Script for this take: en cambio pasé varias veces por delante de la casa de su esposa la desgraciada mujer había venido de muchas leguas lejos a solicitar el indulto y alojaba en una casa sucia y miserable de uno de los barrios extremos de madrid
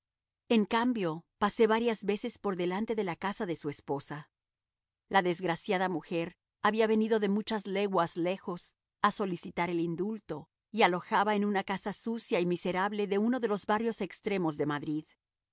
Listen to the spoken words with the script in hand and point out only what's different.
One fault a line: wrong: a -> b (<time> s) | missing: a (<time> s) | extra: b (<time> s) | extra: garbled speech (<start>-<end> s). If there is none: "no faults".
no faults